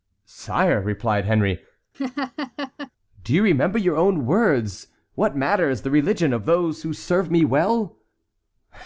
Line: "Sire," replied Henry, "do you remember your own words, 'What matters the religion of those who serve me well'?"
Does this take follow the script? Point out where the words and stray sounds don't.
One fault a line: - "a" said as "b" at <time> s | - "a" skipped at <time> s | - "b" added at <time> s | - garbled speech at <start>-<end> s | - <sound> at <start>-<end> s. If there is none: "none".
- laugh at 1.9-2.9 s